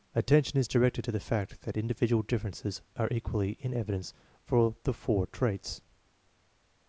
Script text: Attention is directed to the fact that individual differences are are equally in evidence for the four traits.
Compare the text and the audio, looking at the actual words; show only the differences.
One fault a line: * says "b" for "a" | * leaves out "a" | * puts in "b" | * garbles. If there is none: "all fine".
* leaves out "are"